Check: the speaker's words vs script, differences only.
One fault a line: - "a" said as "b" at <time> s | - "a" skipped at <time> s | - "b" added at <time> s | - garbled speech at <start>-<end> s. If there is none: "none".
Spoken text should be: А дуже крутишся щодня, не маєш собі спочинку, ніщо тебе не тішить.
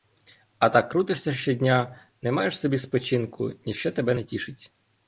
- "дуже" said as "так" at 0.7 s